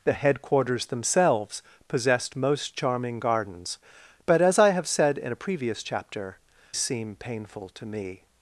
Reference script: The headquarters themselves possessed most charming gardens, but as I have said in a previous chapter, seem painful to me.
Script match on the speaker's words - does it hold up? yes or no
yes